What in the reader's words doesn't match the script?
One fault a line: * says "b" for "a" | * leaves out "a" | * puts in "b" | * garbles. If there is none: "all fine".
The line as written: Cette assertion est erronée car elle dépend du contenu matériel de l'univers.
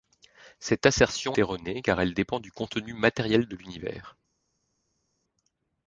* leaves out "est"